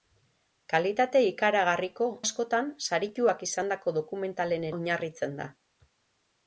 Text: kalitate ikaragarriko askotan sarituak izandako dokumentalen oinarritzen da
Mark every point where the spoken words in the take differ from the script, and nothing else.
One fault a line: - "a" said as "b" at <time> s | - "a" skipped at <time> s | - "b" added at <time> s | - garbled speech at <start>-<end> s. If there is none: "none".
none